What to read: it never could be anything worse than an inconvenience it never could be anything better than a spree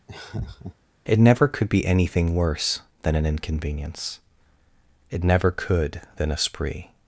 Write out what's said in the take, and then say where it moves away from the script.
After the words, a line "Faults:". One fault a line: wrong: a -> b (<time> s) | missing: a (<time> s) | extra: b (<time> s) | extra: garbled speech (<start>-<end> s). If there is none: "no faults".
it never could be anything worse than an inconvenience it never could than a spree
Faults:
missing: be anything better (6.0 s)